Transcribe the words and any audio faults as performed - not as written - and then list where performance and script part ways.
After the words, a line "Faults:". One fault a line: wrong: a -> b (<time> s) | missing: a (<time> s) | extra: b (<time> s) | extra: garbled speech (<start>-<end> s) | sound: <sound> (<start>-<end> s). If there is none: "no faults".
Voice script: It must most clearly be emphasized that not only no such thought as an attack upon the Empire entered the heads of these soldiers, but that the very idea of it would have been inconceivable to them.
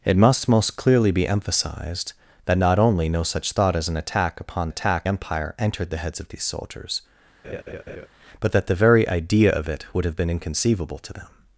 It must most clearly be emphasized that not only no such thought as an attack upon attack Empire entered the heads of these soldiers, but that the very idea of it would have been inconceivable to them.
Faults:
wrong: the -> attack (4.7 s)
sound: laugh (7.4-8.1 s)